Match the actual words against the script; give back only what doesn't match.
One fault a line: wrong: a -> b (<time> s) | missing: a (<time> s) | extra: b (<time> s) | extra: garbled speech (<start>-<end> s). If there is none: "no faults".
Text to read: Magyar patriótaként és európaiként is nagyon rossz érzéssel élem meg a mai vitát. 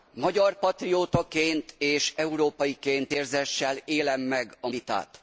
missing: is nagyon rossz (3.1 s)
missing: mai (4.7 s)